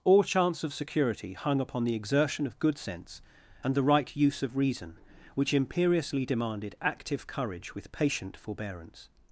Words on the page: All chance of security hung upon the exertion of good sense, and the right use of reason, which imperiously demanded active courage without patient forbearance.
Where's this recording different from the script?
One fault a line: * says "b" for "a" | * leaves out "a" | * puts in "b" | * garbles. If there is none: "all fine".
* says "with" for "without"